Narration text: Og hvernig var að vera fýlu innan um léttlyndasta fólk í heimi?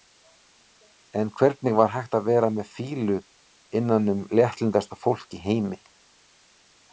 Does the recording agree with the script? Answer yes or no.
no